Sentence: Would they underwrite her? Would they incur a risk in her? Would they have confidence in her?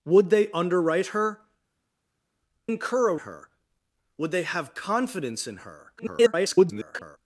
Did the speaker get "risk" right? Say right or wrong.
wrong